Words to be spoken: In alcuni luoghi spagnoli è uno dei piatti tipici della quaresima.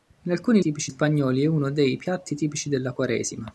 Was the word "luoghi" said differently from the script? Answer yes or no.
yes